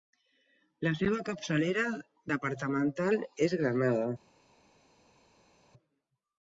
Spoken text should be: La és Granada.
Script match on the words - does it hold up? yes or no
no